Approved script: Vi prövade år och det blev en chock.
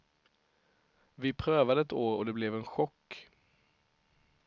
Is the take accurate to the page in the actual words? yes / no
no